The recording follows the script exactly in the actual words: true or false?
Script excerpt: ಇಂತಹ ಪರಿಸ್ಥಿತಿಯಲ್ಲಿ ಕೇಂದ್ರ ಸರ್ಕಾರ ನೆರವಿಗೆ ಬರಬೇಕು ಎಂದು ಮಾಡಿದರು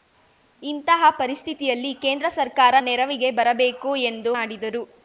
true